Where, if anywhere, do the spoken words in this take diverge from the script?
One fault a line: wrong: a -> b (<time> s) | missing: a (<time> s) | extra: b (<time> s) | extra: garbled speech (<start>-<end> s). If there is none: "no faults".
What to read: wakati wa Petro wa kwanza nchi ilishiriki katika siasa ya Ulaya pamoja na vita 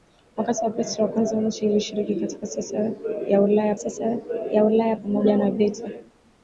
extra: siasa ya Ulaya (3.7 s)